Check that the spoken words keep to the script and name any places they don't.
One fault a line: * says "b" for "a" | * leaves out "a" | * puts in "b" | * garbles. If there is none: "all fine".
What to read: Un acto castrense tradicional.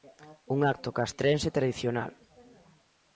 all fine